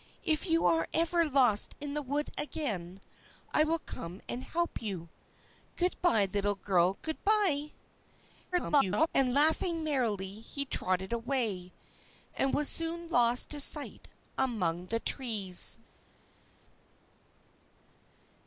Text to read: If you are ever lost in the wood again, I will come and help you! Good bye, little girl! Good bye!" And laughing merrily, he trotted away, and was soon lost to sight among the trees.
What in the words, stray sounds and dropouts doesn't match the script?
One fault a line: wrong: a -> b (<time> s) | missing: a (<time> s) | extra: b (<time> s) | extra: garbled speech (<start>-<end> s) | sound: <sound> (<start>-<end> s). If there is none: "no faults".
extra: garbled speech (8.5-9.1 s)